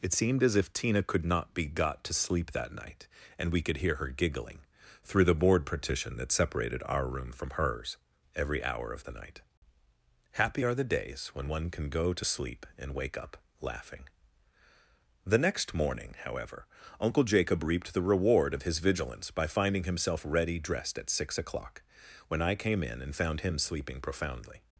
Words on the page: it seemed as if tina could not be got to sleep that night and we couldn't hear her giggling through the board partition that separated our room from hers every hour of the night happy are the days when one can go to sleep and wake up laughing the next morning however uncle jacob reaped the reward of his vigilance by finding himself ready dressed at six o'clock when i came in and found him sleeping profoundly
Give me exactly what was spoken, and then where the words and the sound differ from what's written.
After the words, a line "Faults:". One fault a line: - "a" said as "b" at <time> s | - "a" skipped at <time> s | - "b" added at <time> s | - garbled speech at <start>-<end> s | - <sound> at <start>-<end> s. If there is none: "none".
it seemed as if tina could not be got to sleep that night and we could hear her giggling through the board partition that separated our room from hers every hour of the night happy are the days when one can go to sleep and wake up laughing the next morning however uncle jacob reaped the reward of his vigilance by finding himself ready dressed at six o'clock when i came in and found him sleeping profoundly
Faults:
- "couldn't" said as "could" at 3.6 s